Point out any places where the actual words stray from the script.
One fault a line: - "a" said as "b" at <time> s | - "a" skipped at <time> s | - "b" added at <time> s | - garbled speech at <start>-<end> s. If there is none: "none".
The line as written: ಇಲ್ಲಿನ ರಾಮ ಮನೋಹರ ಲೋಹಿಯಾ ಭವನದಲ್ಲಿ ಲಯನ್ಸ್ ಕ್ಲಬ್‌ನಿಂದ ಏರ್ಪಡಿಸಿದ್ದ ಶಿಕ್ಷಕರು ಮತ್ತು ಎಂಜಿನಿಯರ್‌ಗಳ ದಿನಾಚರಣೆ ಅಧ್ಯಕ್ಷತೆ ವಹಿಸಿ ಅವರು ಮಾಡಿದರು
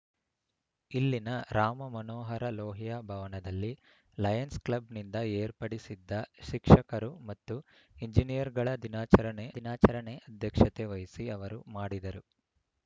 - "ದಿನಾಚರಣೆ" added at 9.6 s